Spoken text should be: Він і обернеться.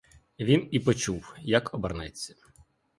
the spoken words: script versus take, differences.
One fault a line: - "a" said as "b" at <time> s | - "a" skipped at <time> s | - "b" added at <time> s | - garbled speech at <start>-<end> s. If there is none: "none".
- "почув як" added at 0.8 s